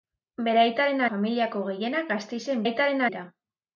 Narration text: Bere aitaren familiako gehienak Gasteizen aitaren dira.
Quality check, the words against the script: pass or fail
pass